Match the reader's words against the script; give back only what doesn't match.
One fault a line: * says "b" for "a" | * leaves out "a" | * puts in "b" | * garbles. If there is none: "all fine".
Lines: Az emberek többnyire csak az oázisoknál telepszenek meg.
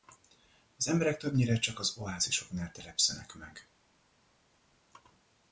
all fine